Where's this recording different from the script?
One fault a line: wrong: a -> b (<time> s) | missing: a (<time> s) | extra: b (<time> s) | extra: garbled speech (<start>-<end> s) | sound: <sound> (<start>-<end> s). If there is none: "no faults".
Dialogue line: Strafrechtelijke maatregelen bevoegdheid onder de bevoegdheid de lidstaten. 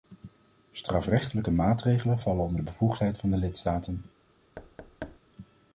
wrong: bevoegdheid -> vallen (2.2 s)
extra: van (3.2 s)
sound: thud (4.6-5.2 s)